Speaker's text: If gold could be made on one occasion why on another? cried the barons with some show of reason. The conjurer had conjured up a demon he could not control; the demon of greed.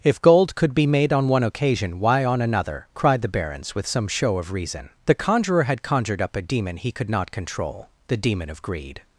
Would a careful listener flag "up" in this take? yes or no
no